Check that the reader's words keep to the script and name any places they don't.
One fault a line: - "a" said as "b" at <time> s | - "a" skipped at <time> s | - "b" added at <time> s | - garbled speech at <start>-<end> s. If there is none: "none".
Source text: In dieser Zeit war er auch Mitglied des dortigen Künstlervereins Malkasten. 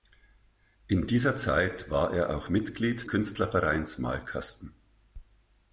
- "des dortigen" skipped at 3.1 s